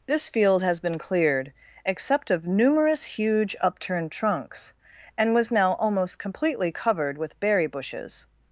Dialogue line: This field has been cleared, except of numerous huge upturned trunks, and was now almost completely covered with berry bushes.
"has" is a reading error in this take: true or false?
false